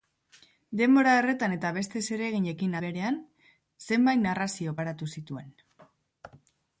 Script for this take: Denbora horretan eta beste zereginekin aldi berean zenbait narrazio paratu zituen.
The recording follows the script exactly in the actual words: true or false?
false